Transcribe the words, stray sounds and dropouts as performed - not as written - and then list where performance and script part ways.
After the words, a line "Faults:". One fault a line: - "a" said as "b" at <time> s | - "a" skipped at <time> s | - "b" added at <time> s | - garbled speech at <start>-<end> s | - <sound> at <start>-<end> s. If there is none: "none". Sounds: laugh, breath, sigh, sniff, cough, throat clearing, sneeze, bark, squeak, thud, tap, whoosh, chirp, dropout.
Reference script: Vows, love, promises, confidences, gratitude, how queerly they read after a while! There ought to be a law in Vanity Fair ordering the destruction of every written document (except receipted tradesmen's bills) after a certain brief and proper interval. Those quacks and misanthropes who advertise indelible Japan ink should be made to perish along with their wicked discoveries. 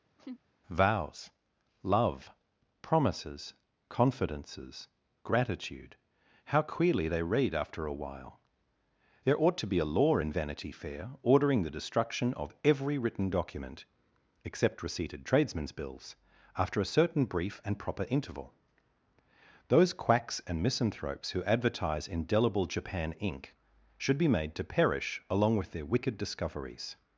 Vows, love, promises, confidences, gratitude, how queerly they read after a while! There ought to be a law in Vanity Fair ordering the destruction of every written document (except receipted tradesmen's bills) after a certain brief and proper interval. Those quacks and misanthropes who advertise indelible Japan ink should be made to perish along with their wicked discoveries.
Faults:
- laugh at 0.2-0.4 s